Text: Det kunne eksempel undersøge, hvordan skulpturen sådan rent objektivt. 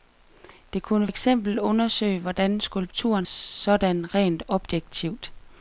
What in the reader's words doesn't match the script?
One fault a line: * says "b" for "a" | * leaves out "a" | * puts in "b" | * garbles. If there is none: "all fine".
all fine